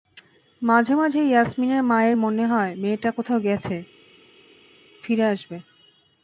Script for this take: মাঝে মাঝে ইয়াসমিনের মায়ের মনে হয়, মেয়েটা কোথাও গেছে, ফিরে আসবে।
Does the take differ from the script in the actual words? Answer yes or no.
no